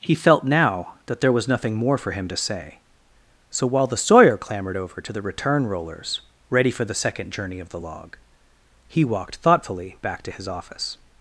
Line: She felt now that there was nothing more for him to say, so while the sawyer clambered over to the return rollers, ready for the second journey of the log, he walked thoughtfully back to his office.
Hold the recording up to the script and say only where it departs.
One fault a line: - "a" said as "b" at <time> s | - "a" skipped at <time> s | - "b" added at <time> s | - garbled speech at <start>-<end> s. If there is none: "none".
- "She" said as "He" at 0.0 s